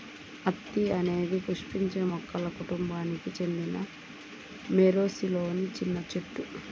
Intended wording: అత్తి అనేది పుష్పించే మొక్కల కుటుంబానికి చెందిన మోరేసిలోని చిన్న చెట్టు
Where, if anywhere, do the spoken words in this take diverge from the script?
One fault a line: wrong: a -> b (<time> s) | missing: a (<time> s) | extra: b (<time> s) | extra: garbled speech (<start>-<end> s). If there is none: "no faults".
no faults